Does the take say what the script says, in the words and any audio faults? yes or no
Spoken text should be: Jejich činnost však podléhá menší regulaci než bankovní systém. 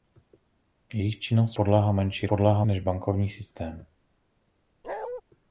no